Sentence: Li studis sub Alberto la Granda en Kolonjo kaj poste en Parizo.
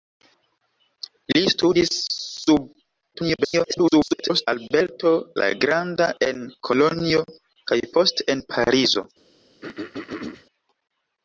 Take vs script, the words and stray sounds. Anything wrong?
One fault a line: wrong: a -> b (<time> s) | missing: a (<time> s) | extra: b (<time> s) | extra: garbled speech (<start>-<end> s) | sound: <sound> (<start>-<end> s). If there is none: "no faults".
extra: garbled speech (3.1-4.5 s)
sound: throat clearing (9.6-10.5 s)